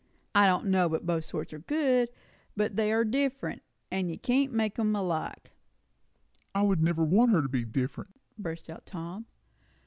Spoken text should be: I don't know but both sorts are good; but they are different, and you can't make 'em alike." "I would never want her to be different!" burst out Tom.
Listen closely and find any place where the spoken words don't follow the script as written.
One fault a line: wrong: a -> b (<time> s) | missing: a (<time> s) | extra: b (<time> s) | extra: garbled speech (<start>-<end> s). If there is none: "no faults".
no faults